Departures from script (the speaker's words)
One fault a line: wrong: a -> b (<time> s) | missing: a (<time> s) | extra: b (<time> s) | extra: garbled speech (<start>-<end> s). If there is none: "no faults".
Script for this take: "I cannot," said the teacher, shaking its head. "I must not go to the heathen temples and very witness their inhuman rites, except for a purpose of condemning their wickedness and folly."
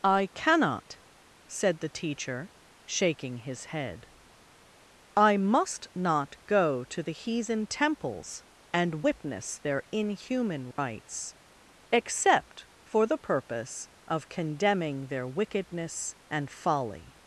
wrong: its -> his (3.4 s)
missing: very (9.0 s)
wrong: a -> the (13.1 s)